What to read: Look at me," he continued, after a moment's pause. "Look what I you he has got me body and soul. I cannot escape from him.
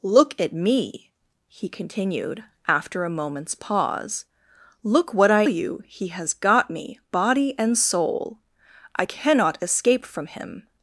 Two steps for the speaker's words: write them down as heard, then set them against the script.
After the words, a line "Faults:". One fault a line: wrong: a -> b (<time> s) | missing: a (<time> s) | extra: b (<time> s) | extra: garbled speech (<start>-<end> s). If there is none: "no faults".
Look at me," he continued, after a moment's pause. "Look what I you he has got me body and soul. I cannot escape from him.
Faults:
no faults